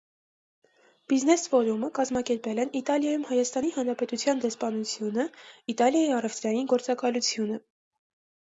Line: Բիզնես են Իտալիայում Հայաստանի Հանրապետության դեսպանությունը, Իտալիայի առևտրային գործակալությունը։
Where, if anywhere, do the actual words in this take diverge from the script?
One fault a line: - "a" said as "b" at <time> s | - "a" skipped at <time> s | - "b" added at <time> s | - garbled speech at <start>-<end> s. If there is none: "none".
- "ֆորումը կազմակերպել" added at 1.5 s